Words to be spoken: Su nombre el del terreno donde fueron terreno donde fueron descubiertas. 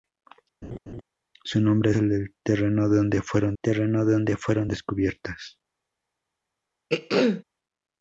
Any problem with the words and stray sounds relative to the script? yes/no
yes